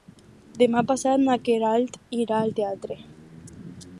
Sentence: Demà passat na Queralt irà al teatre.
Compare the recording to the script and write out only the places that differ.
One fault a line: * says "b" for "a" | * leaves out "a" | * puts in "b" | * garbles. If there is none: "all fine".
all fine